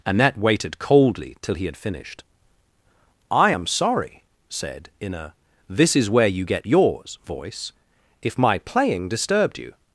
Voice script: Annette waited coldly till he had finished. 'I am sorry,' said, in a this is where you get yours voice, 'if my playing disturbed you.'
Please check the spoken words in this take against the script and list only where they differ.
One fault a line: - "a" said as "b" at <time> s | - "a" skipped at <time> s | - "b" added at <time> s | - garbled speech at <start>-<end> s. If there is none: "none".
none